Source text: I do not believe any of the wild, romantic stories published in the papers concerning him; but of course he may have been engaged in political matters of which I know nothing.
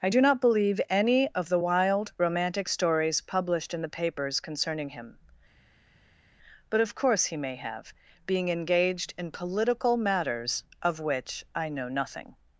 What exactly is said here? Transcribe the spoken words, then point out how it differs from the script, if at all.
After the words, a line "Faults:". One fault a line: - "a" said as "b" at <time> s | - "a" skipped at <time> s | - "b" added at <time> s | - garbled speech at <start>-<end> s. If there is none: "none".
I do not believe any of the wild, romantic stories published in the papers concerning him; but of course he may have being engaged in political matters of which I know nothing.
Faults:
- "been" said as "being" at 8.3 s